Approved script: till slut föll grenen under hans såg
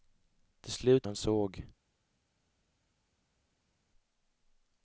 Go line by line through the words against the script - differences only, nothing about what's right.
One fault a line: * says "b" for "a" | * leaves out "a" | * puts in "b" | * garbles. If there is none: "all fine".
* leaves out "föll grenen under"